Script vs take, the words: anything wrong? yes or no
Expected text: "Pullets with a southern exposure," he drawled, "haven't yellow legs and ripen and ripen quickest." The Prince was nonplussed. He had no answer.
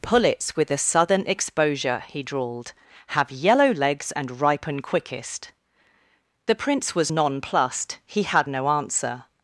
yes